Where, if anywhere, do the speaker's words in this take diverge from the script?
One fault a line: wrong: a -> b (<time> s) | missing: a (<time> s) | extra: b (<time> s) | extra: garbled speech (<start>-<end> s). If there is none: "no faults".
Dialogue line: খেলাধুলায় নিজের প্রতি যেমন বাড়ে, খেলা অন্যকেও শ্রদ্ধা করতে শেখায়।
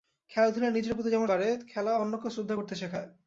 no faults